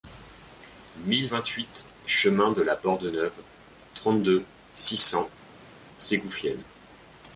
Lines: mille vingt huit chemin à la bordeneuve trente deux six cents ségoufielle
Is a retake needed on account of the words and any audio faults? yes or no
yes